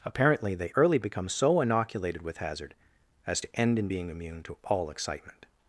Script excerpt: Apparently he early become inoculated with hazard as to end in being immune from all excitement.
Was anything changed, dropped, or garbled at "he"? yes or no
yes